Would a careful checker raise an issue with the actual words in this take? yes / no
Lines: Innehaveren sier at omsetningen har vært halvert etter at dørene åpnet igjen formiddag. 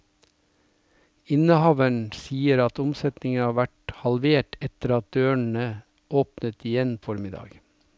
no